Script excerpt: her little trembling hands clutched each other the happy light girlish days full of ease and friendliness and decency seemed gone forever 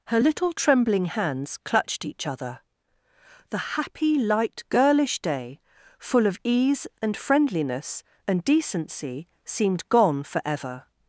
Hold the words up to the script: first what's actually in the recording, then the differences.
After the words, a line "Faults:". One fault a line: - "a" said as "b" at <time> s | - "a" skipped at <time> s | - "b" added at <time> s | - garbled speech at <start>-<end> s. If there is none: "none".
her little trembling hands clutched each other the happy light girlish day full of ease and friendliness and decency seemed gone forever
Faults:
- "days" said as "day" at 5.2 s